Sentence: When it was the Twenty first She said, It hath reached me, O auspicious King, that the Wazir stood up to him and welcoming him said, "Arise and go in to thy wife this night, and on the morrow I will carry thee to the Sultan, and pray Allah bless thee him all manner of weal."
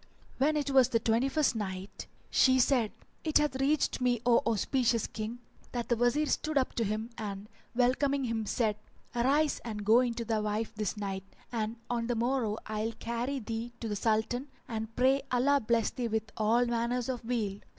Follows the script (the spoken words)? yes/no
no